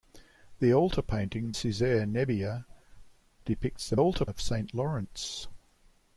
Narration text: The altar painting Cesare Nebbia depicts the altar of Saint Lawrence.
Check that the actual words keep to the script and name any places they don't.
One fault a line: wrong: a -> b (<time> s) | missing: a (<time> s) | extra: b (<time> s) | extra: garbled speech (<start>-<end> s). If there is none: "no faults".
no faults